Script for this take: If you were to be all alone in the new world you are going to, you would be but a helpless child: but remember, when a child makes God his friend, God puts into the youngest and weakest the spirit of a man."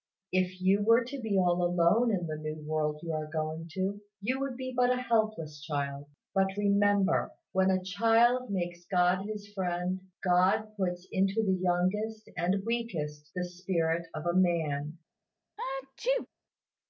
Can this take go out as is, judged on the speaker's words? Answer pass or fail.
pass